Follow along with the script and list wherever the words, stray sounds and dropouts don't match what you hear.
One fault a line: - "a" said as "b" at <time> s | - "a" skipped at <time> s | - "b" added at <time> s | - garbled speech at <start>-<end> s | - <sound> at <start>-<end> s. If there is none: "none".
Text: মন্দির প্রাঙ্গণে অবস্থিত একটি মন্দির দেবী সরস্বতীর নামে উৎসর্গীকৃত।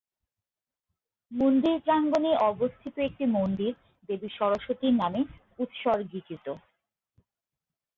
none